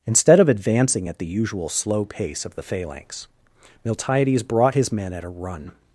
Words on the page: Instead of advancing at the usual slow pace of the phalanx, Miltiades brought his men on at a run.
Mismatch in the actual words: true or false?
true